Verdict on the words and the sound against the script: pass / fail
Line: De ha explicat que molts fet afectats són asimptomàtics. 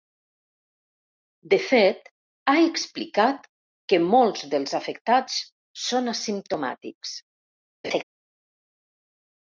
fail